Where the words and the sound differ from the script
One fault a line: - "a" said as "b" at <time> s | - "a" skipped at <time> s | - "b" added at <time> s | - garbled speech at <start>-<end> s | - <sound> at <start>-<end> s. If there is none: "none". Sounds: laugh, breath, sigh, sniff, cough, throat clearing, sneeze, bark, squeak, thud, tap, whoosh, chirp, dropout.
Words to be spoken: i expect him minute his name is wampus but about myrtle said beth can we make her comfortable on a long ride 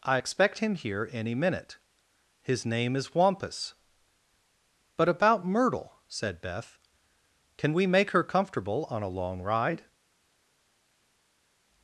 - "here any" added at 0.7 s